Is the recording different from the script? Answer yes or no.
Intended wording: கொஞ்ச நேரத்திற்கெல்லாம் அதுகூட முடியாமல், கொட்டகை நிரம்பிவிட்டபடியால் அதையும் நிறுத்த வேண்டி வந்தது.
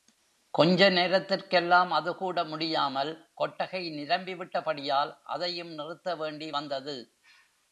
no